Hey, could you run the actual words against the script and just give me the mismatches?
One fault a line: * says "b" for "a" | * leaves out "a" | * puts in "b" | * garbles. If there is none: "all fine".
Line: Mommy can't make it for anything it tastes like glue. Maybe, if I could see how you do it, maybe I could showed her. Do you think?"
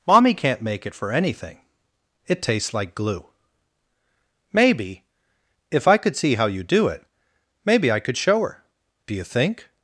* says "show" for "showed"